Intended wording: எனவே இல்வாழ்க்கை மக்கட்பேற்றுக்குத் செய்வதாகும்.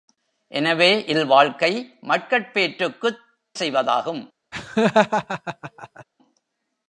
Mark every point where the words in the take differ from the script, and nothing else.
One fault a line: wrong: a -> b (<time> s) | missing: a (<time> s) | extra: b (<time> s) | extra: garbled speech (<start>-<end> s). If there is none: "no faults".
no faults